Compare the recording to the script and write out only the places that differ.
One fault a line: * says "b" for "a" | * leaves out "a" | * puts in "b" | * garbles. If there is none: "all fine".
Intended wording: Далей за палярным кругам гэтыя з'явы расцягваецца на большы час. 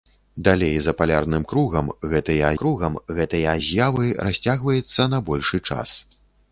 * puts in "кругам гэтыя"